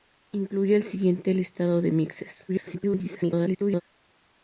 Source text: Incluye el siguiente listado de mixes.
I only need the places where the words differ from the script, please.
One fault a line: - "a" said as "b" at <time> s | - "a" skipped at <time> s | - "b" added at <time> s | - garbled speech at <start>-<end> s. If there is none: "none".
- garbled speech at 2.5-3.8 s